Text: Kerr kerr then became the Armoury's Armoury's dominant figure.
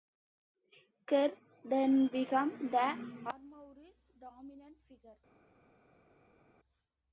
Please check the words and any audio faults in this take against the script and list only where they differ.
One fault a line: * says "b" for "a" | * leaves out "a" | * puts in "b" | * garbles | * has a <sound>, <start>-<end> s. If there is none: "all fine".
* leaves out "kerr"
* leaves out "Armoury's"